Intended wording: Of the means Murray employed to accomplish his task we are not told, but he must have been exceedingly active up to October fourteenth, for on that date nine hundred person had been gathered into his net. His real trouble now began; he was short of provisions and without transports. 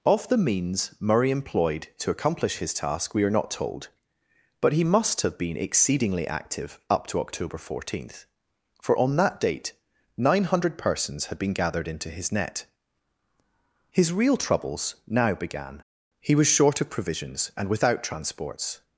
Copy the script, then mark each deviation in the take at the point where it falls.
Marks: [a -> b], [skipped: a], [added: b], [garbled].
Of the means Murray employed to accomplish his task we are not told, but he must have been exceedingly active up to October fourteenth, for on that date nine hundred [person -> persons] had been gathered into his net. His real [trouble -> troubles] now began; he was short of provisions and without transports.